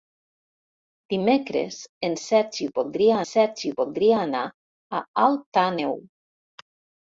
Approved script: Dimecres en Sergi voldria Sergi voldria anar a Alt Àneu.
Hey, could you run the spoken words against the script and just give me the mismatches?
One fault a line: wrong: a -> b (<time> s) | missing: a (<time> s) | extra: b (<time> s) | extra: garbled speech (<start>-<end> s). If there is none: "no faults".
no faults